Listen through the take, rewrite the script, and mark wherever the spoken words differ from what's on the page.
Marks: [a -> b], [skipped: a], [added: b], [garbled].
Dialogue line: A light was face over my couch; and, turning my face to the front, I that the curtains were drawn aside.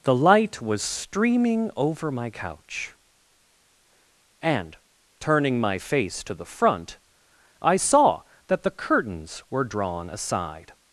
[A -> The] light was [face -> streaming] over my couch; and, turning my face to the front, I [added: saw] that the curtains were drawn aside.